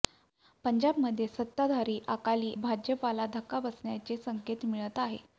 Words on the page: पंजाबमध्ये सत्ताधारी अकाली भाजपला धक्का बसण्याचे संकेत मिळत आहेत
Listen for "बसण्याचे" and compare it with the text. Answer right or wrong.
right